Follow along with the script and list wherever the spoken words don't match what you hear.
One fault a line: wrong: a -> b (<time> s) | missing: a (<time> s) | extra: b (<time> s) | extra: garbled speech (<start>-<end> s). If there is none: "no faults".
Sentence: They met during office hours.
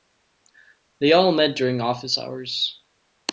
extra: all (1.1 s)